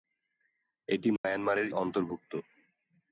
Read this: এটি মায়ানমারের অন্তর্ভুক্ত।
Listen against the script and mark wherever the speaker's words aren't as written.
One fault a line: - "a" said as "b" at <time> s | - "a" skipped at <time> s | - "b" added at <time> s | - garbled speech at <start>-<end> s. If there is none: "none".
none